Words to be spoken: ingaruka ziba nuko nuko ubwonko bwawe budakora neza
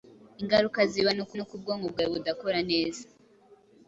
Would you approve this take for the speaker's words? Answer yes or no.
yes